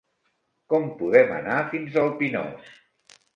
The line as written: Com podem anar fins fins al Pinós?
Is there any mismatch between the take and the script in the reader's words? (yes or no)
yes